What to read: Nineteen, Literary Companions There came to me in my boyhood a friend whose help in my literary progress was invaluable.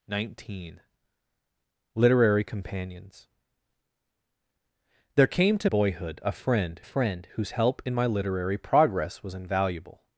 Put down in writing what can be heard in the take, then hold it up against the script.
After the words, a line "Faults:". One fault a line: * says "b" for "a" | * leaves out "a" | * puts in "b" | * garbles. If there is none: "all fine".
Nineteen, Literary Companions There came to boyhood a friend friend whose help in my literary progress was invaluable.
Faults:
* leaves out "me in my"
* puts in "friend"